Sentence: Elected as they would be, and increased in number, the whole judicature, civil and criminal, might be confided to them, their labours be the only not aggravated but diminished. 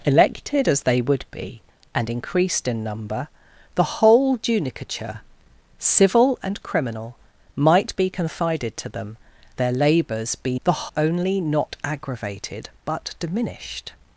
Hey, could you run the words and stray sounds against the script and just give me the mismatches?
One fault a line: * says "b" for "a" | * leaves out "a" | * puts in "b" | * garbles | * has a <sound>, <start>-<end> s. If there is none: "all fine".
all fine